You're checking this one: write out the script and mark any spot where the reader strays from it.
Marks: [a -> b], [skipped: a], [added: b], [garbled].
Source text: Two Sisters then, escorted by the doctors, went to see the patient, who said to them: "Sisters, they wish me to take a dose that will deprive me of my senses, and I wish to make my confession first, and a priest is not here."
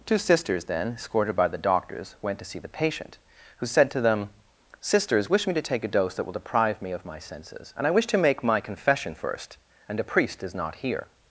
Two Sisters then, escorted by the doctors, went to see the patient, who said to them: "Sisters, [skipped: they] wish me to take a dose that will deprive me of my senses, and I wish to make my confession first, and a priest is not here."